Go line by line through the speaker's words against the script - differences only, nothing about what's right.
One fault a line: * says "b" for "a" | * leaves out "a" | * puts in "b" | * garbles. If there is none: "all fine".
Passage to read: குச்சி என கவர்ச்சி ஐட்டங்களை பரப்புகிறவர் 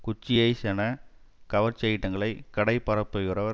* puts in "ஐஸ்"
* puts in "கடை"